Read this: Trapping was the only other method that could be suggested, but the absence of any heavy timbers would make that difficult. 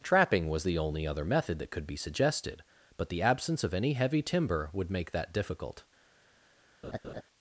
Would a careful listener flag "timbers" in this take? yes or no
yes